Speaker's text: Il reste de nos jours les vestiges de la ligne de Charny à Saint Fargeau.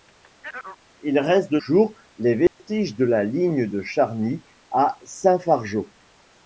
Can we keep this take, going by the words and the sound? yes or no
no